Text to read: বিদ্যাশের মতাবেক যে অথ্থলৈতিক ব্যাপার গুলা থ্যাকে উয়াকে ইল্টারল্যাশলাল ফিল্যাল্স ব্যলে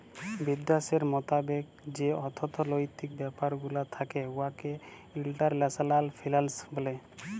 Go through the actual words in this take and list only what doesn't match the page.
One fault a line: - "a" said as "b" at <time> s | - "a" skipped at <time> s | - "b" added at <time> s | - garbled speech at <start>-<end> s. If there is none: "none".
none